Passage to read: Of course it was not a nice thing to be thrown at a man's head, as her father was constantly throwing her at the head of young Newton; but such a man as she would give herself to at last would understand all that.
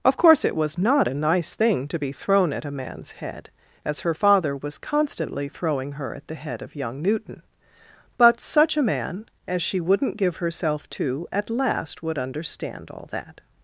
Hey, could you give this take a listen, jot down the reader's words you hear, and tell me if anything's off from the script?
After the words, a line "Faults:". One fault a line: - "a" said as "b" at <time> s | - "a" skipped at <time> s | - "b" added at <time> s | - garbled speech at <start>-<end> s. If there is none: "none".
Of course it was not a nice thing to be thrown at a man's head, as her father was constantly throwing her at the head of young Newton; but such a man as she wouldn't give herself to at last would understand all that.
Faults:
- "would" said as "wouldn't" at 9.8 s